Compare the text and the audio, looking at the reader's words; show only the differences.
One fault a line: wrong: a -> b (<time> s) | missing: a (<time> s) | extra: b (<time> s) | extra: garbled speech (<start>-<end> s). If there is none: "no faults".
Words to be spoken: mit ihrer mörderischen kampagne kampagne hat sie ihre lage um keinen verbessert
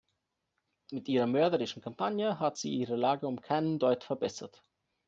missing: kampagne (2.4 s)
extra: deut (3.8 s)